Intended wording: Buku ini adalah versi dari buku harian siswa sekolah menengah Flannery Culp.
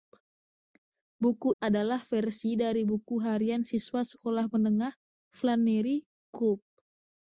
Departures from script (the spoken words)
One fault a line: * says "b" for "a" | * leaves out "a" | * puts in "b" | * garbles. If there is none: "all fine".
* leaves out "ini"